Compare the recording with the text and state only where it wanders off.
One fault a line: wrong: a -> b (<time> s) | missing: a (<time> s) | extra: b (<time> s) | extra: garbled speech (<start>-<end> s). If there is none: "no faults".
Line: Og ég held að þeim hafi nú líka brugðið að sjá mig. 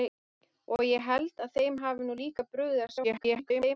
extra: garbled speech (3.0-3.8 s)